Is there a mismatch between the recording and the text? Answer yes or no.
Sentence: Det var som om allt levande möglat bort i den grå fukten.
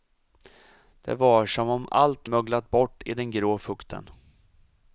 yes